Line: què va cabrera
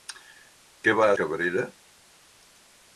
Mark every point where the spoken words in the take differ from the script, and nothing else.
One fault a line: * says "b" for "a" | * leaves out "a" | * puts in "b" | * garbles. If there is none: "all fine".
all fine